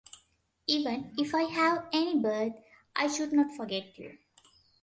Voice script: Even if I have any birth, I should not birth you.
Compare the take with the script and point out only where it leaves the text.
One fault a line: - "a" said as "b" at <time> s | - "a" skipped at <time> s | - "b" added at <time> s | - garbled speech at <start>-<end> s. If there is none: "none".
- "birth" said as "forget" at 3.6 s